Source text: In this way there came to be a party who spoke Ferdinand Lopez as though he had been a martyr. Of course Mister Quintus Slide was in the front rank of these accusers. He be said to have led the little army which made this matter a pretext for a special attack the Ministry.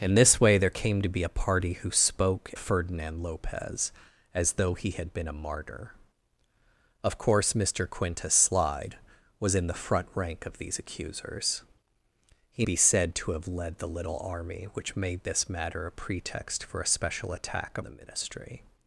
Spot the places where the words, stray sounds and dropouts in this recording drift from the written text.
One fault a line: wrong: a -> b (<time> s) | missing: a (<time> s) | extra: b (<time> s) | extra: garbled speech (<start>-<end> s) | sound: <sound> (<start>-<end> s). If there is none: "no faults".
no faults